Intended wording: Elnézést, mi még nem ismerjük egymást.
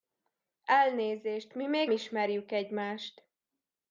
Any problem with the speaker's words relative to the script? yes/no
yes